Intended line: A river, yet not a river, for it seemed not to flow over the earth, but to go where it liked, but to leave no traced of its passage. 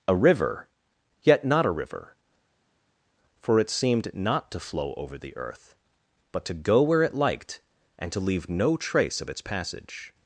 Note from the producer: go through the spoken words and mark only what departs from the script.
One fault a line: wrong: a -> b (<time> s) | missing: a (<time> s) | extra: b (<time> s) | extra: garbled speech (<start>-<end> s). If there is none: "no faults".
wrong: but -> and (8.0 s)
wrong: traced -> trace (8.8 s)